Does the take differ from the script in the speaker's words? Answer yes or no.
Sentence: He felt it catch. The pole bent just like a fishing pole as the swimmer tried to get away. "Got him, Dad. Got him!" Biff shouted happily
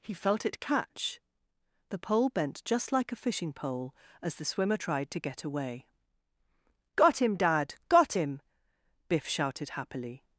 no